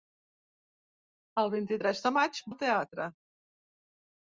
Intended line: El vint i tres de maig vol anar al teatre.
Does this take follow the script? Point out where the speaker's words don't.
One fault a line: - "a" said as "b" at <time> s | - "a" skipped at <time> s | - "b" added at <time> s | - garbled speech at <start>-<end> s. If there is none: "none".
- "vol anar" skipped at 2.4 s